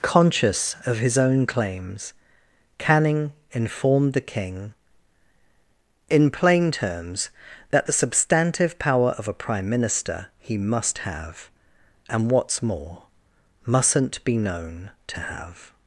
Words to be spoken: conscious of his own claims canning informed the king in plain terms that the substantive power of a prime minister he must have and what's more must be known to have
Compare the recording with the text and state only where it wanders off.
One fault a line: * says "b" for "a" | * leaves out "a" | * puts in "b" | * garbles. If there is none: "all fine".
* says "mustn't" for "must"